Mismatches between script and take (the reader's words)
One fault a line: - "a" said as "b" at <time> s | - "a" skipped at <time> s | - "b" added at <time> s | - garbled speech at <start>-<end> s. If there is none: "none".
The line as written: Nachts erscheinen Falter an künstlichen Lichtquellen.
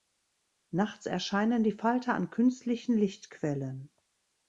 - "die" added at 1.6 s